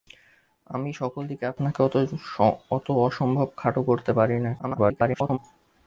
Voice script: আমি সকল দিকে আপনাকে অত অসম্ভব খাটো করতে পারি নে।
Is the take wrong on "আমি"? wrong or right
right